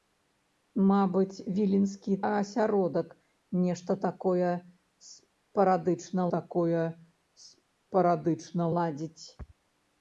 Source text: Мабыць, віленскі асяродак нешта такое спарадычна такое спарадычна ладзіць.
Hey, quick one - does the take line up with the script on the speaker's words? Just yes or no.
yes